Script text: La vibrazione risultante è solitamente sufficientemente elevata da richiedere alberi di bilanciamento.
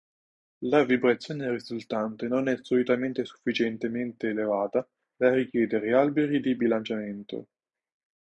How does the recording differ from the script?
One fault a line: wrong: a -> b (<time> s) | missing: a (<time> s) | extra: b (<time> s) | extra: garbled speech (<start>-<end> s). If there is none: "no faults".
extra: non (2.3 s)